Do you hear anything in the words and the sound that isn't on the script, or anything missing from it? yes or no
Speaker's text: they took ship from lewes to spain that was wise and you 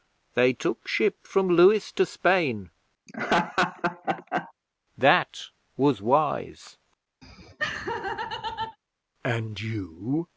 yes